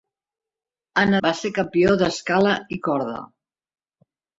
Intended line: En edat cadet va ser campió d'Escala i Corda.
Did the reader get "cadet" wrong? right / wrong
wrong